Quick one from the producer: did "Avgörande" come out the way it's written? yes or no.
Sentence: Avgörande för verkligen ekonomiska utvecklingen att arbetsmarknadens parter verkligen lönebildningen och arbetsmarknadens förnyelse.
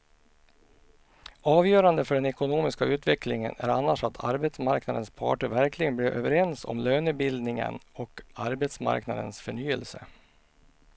yes